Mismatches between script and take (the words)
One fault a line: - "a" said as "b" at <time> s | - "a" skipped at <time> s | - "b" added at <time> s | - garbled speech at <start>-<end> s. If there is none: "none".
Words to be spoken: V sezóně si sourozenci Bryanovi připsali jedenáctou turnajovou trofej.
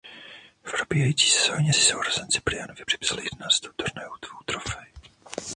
- "probíhající" added at 0.7 s